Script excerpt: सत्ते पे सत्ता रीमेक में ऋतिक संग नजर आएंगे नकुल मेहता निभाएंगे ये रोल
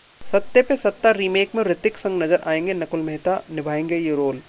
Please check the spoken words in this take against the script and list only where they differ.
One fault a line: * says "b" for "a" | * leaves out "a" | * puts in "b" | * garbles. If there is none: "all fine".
all fine